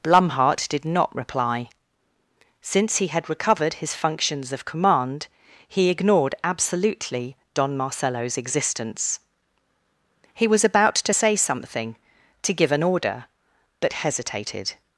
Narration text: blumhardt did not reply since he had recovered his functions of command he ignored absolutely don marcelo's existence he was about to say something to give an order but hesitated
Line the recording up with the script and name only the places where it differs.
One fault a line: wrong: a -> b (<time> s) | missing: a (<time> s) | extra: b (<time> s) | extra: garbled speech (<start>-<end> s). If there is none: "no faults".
no faults